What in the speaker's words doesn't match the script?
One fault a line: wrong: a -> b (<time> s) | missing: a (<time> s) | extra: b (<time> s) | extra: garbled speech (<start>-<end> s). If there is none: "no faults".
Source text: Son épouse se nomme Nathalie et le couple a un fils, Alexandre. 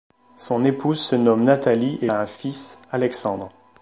missing: le couple (2.1 s)